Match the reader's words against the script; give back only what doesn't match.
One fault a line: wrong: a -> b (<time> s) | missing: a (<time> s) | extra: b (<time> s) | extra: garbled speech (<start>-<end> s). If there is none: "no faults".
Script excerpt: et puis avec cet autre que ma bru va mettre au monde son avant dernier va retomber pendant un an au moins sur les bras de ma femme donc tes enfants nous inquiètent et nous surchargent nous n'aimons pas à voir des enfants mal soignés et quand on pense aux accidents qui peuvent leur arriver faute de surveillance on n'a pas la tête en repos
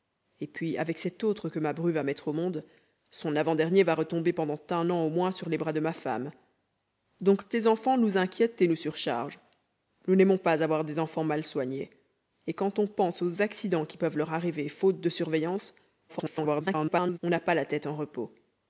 extra: garbled speech (16.1-17.2 s)